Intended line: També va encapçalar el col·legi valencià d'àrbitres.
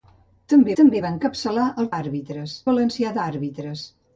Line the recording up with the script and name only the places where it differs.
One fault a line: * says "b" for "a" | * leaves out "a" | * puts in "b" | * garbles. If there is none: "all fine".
* puts in "també"
* says "d'àrbitres" for "col·legi"